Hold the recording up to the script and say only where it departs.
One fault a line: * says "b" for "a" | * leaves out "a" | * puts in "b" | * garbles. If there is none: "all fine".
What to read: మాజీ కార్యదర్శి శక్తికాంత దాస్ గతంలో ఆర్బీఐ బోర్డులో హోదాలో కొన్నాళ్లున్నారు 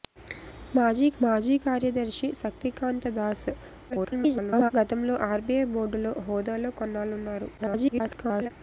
* puts in "మాజీ"
* garbles
* garbles